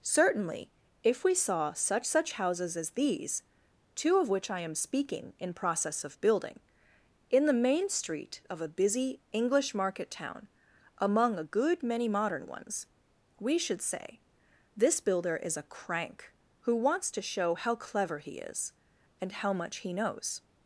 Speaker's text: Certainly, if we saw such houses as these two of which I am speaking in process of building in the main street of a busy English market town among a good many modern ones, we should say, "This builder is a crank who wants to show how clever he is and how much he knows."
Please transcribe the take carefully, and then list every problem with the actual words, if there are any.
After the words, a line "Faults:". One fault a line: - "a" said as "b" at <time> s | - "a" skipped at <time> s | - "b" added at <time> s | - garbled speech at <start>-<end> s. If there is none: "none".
Certainly, if we saw such such houses as these two of which I am speaking in process of building in the main street of a busy English market town among a good many modern ones, we should say, "This builder is a crank who wants to show how clever he is and how much he knows."
Faults:
- "such" added at 2.1 s